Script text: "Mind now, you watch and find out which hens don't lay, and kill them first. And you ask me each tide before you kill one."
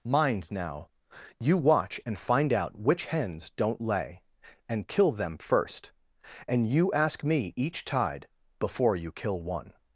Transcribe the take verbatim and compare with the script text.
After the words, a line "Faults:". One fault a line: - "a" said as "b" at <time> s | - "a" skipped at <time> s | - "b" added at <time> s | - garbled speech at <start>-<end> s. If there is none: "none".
"Mind now, you watch and find out which hens don't lay, and kill them first. And you ask me each tide before you kill one."
Faults:
none